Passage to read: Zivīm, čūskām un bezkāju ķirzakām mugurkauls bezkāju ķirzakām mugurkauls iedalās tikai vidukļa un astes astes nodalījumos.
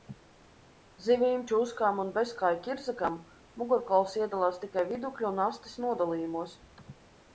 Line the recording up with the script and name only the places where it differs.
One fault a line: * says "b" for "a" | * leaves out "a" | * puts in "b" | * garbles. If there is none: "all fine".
* leaves out "bezkāju ķirzakām mugurkauls"
* leaves out "astes"